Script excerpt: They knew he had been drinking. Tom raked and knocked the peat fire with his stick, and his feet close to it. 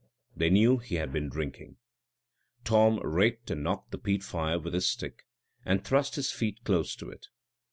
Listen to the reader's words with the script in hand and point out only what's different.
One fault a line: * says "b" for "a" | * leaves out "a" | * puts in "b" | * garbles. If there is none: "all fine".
* puts in "thrust"